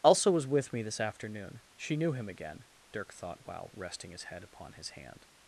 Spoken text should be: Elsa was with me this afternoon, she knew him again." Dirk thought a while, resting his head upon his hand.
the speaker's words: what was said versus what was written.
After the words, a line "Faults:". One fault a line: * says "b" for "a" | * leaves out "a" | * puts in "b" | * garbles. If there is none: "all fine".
Elsa was with me this afternoon, she knew him again." Dirk thought while, resting his head upon his hand.
Faults:
* leaves out "a"